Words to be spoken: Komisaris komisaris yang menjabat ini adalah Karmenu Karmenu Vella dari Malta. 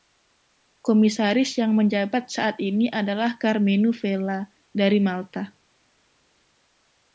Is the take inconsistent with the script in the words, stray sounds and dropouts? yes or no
yes